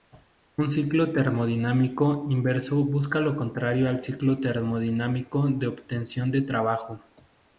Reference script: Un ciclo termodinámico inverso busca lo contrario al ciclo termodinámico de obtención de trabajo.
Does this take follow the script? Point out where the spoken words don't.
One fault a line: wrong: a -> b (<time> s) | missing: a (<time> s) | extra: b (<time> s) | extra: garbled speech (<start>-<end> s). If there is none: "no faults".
no faults